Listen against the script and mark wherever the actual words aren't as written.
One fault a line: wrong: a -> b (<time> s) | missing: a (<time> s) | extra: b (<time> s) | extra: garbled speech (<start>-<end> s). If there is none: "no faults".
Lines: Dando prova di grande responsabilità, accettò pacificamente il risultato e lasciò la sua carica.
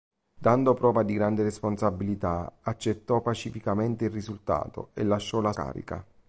missing: sua (5.5 s)